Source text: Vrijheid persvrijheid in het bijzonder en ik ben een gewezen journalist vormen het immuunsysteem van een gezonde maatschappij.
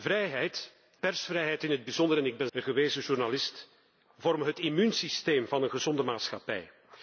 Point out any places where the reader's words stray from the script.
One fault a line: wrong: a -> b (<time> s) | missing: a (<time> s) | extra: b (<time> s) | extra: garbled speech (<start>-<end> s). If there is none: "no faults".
no faults